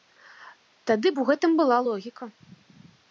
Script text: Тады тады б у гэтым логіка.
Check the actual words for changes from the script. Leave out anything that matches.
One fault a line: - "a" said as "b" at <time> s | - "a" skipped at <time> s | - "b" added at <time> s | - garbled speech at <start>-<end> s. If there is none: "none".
- "тады" skipped at 1.1 s
- "была" added at 1.6 s